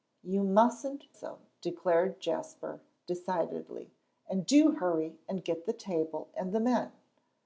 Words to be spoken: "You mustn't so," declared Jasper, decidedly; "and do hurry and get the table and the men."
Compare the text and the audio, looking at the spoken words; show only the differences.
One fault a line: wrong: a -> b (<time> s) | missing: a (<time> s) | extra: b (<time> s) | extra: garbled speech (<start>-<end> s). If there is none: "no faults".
no faults